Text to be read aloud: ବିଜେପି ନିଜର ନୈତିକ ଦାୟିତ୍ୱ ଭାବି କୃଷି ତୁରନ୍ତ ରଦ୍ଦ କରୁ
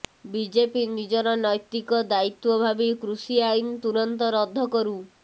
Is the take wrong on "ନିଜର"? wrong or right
right